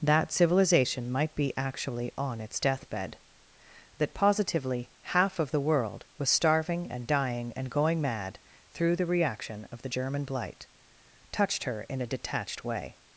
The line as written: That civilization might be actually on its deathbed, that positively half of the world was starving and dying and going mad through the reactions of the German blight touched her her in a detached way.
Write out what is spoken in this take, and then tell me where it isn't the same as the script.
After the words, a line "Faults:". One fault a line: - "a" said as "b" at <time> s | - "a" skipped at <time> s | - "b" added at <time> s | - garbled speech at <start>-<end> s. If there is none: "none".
That civilization might be actually on its deathbed, that positively half of the world was starving and dying and going mad through the reaction of the German blight touched her in a detached way.
Faults:
- "reactions" said as "reaction" at 9.1 s
- "her" skipped at 11.8 s